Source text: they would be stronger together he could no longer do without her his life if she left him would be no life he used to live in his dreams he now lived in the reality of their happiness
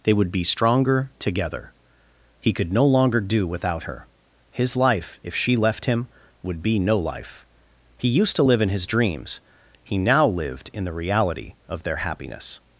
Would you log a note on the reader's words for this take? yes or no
no